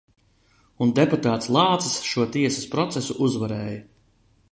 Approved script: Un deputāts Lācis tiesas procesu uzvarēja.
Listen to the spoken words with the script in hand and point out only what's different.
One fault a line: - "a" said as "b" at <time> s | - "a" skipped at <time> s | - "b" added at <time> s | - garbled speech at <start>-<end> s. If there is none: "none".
- "šo" added at 2.1 s